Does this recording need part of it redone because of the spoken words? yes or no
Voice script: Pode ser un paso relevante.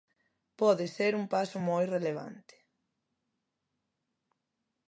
yes